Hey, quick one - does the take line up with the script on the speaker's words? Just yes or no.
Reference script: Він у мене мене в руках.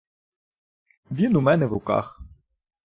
no